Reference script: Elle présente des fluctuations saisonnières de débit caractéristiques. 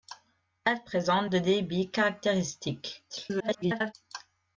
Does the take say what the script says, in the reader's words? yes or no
no